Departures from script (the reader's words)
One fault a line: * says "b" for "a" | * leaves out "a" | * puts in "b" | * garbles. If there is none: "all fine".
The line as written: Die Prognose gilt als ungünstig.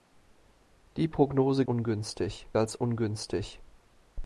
* says "ungünstig" for "gilt"